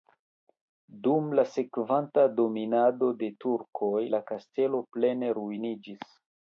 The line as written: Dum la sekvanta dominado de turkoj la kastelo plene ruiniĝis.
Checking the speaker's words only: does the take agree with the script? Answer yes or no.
yes